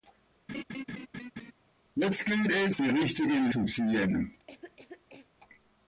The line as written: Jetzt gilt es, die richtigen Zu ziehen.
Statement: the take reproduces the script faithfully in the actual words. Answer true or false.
true